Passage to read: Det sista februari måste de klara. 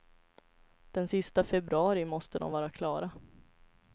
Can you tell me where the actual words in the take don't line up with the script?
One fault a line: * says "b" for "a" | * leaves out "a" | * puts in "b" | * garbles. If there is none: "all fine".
* says "Den" for "Det"
* puts in "vara"